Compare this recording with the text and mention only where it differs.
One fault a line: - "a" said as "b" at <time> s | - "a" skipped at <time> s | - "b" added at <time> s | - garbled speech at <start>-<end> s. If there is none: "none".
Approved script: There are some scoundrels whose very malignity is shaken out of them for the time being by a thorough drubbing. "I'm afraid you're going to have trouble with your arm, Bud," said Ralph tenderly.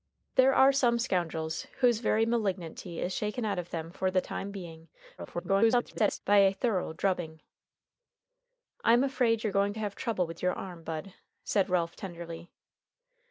- garbled speech at 5.2-6.2 s